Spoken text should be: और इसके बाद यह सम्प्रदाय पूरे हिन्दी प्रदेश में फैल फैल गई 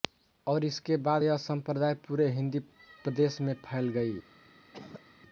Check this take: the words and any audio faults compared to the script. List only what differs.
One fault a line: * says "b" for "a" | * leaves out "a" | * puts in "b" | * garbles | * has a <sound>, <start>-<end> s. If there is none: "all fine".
* leaves out "फैल"
* has a cough, 4.7-5.0 s